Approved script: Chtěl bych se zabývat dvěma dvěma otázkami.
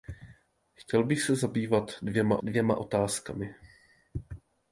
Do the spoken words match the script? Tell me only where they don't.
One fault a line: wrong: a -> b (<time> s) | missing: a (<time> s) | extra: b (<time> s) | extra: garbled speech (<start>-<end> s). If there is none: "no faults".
no faults